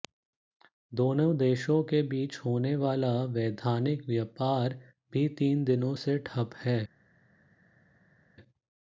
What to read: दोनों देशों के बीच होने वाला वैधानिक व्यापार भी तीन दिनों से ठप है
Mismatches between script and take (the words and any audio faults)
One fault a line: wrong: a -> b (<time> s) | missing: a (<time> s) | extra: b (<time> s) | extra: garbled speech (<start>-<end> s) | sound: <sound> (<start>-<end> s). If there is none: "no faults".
no faults